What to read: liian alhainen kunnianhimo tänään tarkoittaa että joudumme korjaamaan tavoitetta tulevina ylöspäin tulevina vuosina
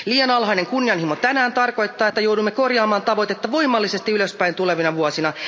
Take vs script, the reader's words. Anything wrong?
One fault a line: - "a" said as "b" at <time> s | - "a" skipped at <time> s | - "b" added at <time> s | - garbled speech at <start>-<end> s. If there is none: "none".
- "tulevina" said as "voimallisesti" at 3.5 s